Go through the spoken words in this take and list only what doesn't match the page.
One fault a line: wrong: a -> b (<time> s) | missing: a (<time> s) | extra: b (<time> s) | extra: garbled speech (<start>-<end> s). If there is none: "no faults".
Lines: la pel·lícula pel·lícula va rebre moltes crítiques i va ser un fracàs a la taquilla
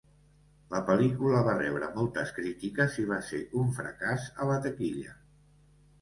missing: pel·lícula (1.4 s)